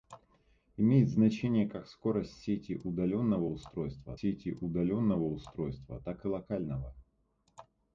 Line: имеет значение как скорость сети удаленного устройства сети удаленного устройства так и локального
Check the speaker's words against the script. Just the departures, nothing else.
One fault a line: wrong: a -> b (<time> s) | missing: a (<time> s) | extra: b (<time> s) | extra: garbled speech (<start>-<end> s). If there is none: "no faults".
no faults